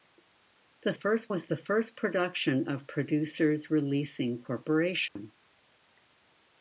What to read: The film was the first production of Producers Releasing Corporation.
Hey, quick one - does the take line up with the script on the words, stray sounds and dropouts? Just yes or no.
no